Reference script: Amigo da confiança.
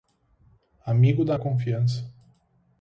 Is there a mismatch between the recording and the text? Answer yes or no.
no